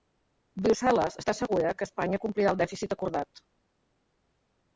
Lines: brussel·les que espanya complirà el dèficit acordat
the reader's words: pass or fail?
fail